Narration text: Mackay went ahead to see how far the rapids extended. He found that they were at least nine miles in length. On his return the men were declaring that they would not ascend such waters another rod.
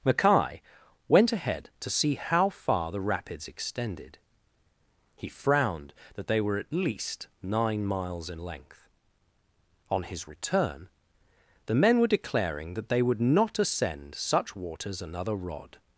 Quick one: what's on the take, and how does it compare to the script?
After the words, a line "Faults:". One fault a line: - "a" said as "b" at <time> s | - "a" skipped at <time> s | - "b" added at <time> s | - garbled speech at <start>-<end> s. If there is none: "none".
Mackay went ahead to see how far the rapids extended. He frowned that they were at least nine miles in length. On his return the men were declaring that they would not ascend such waters another rod.
Faults:
- "found" said as "frowned" at 5.3 s